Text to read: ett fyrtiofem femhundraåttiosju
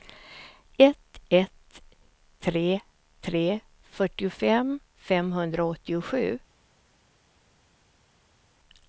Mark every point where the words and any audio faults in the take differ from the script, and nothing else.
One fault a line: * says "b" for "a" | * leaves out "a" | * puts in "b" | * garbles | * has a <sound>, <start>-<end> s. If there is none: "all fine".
* puts in "ett tre tre"